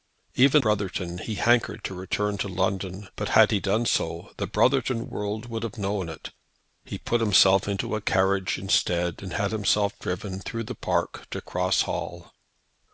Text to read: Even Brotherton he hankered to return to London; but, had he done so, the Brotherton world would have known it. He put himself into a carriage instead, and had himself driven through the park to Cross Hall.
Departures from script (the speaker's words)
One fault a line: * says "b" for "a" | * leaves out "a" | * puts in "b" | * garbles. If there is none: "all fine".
all fine